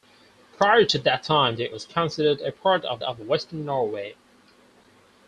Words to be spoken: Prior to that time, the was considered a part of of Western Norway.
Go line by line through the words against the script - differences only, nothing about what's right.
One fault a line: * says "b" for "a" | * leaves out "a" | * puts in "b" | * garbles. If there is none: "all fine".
all fine